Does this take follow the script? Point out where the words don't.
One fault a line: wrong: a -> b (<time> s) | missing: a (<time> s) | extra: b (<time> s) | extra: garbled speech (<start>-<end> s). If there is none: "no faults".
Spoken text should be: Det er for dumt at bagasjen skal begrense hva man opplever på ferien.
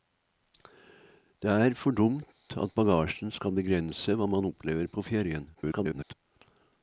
extra: garbled speech (5.5-6.1 s)